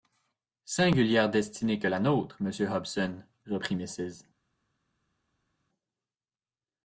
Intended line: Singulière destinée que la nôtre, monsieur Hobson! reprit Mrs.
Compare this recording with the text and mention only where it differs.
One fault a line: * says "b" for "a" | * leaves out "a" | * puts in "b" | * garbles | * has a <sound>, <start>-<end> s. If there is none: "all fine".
all fine